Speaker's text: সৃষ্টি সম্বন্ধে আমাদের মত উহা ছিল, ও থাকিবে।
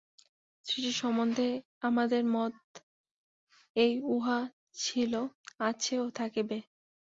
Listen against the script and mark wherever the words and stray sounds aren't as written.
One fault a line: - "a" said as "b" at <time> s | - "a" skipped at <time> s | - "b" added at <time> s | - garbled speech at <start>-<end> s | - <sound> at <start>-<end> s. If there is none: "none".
- "এই" added at 3.8 s
- "আছে" added at 5.6 s